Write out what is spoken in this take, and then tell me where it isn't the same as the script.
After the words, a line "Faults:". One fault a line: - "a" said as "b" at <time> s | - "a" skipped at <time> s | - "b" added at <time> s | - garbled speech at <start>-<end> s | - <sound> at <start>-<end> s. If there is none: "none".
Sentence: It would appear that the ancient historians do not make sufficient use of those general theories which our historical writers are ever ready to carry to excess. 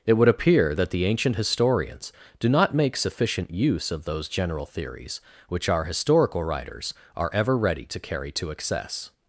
It would appear that the ancient historians do not make sufficient use of those general theories which our historical writers are ever ready to carry to excess.
Faults:
none